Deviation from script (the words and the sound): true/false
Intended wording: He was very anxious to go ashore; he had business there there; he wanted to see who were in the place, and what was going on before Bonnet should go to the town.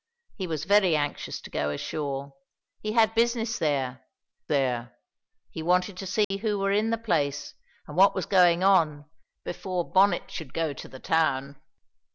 true